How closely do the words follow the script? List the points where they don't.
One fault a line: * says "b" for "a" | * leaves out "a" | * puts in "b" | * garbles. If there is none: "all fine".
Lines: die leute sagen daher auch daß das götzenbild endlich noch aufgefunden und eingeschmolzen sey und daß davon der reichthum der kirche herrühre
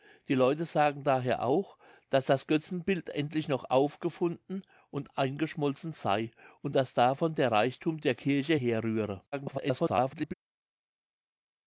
* garbles